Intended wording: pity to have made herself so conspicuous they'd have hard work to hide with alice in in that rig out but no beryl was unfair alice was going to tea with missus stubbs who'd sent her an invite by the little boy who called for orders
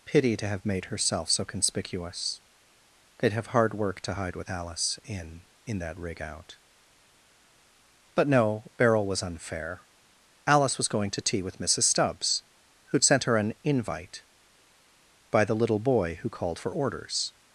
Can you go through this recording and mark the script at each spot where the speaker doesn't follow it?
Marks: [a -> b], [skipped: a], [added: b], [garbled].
pity to have made herself so conspicuous they'd have hard work to hide with alice in in that rig out but no beryl was unfair alice was going to tea with missus stubbs who'd sent her an invite by the little boy who called for orders